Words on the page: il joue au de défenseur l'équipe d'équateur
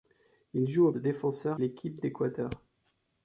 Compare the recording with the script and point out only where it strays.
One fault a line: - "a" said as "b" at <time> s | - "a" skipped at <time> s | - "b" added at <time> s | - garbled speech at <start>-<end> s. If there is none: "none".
none